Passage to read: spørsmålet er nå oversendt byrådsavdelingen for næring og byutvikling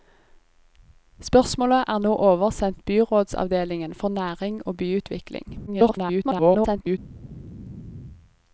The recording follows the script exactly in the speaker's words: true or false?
false